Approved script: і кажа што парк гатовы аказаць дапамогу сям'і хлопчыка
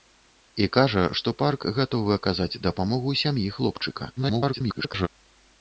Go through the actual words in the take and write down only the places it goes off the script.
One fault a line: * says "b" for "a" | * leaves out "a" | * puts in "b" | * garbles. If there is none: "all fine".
* garbles